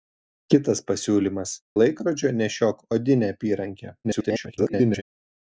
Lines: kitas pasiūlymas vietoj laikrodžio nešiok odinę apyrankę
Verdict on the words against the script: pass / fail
fail